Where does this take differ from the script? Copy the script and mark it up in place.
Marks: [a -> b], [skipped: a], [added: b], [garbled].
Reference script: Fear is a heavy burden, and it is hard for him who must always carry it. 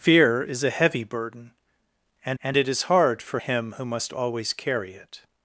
Fear is a heavy burden, and [added: and] it is hard for him who must always carry it.